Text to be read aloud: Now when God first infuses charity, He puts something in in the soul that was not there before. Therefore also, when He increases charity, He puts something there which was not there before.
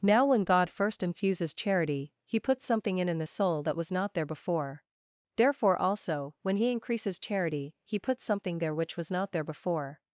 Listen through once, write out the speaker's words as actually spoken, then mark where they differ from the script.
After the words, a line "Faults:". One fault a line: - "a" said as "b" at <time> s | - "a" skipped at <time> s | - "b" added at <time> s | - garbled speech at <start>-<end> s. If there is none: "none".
Now when God first infuses charity, He puts something in in the soul that was not there before. Therefore also, when He increases charity, He puts something there which was not there before.
Faults:
none